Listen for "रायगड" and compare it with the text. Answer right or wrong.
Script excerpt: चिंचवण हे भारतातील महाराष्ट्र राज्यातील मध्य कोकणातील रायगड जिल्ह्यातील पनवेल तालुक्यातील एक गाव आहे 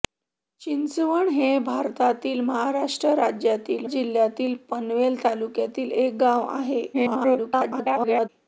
wrong